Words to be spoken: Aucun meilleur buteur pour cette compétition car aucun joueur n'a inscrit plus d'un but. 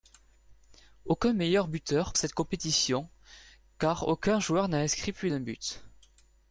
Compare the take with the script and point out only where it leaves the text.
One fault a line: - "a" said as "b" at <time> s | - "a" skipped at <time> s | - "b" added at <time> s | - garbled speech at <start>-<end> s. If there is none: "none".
- "pour" skipped at 2.1 s